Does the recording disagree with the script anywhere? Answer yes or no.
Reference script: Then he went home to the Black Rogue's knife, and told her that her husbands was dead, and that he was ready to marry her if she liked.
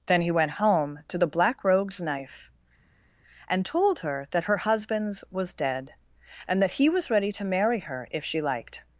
no